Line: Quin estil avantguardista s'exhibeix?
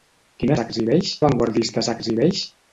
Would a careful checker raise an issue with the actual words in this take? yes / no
yes